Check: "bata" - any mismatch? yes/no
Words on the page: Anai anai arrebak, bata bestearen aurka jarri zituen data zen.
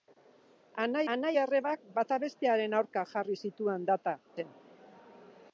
no